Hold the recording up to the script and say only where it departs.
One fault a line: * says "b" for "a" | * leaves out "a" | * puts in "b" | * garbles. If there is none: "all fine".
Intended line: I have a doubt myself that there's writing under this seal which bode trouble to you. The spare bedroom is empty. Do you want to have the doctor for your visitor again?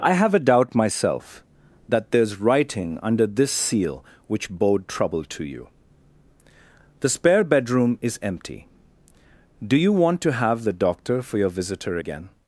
all fine